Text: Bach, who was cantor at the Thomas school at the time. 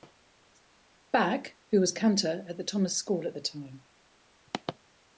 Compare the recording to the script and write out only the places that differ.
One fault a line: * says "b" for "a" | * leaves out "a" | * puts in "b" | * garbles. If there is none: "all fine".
all fine